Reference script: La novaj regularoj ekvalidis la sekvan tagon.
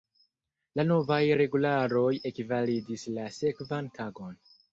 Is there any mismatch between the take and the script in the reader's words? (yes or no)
no